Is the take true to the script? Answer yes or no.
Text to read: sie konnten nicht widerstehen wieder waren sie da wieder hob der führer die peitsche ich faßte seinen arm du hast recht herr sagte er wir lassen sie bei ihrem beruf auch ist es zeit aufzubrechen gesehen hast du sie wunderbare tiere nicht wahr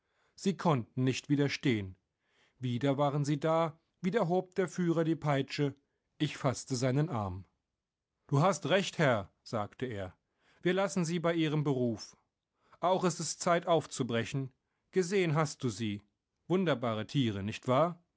yes